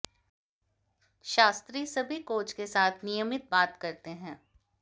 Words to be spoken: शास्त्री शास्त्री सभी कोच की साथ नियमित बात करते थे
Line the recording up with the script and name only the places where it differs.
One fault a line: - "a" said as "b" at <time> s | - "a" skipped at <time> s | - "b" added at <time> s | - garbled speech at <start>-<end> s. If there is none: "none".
- "शास्त्री" skipped at 1.9 s
- "की" said as "के" at 2.5 s
- "थे" said as "हैं" at 4.1 s